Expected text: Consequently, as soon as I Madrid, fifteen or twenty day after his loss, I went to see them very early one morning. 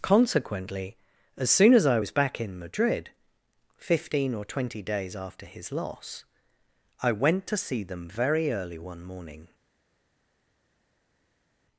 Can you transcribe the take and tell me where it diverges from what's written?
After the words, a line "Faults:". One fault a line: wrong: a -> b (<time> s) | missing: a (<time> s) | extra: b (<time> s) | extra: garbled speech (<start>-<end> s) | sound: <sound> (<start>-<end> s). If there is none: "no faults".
Consequently, as soon as I was back in Madrid, fifteen or twenty days after his loss, I went to see them very early one morning.
Faults:
extra: was back in (2.0 s)
wrong: day -> days (4.8 s)